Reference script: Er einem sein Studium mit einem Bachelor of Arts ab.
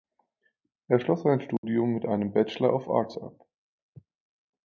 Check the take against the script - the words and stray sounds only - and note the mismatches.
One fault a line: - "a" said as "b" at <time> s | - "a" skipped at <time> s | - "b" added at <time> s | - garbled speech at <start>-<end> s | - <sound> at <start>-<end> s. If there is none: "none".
- "einem" said as "schloss" at 1.0 s
- dropout at 1.6-1.6 s